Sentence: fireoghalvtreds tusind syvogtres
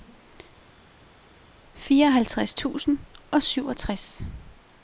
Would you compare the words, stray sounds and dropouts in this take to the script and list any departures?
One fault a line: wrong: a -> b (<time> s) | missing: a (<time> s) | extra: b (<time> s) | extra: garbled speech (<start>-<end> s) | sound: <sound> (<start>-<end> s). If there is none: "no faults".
extra: og (3.3 s)